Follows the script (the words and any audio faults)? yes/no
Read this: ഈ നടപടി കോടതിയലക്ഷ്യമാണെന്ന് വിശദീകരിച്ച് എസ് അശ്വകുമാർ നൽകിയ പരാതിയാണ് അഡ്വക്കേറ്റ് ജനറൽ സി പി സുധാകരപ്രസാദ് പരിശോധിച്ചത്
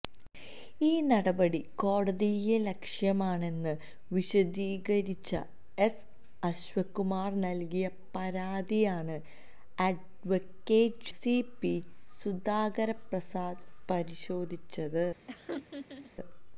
no